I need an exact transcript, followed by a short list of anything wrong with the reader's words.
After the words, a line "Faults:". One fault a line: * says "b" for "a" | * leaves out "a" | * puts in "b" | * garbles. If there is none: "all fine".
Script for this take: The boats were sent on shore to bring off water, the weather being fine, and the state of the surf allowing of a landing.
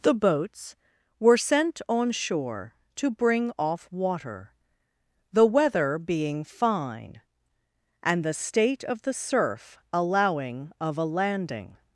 The boats were sent on shore to bring off water, the weather being fine, and the state of the surf allowing of a landing.
Faults:
all fine